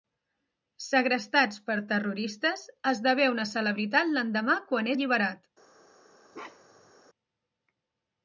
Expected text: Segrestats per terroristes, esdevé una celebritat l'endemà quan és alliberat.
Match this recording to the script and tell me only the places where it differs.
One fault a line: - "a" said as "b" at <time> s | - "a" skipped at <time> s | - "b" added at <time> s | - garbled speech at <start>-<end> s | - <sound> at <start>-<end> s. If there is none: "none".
- "és" skipped at 4.9 s
- bark at 6.3-6.9 s